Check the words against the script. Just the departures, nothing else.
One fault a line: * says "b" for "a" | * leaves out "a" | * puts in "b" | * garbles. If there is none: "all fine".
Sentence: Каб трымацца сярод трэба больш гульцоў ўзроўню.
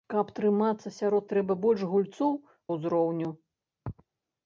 all fine